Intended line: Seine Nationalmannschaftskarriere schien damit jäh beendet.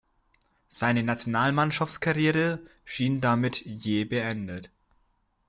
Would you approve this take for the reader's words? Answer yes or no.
yes